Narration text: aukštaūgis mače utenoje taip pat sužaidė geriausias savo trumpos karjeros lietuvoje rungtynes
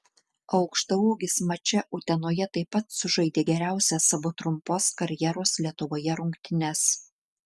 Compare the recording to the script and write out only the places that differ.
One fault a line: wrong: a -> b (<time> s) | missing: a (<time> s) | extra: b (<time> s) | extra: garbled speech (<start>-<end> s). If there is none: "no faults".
no faults